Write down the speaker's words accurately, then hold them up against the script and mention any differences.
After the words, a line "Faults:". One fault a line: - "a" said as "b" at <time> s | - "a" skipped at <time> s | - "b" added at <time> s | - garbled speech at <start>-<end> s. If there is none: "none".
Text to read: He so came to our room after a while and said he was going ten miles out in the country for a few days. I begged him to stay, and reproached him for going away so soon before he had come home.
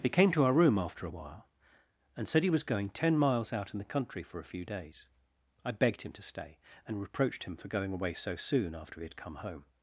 He came to our room after a while and said he was going ten miles out in the country for a few days. I begged him to stay, and reproached him for going away so soon after he had come home.
Faults:
- "so" skipped at 0.1 s
- "before" said as "after" at 8.7 s